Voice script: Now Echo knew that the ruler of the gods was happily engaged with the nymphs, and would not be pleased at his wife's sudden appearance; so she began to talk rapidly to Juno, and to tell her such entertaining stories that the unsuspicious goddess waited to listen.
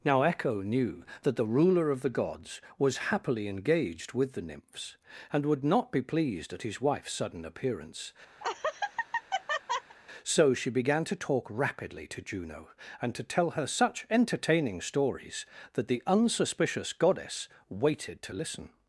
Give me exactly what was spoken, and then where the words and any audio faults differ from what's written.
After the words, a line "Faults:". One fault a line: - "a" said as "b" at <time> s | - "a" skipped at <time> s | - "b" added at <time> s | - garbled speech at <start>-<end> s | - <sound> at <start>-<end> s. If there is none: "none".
Now Echo knew that the ruler of the gods was happily engaged with the nymphs, and would not be pleased at his wife's sudden appearance; so she began to talk rapidly to Juno, and to tell her such entertaining stories that the unsuspicious goddess waited to listen.
Faults:
- laugh at 8.4-10.0 s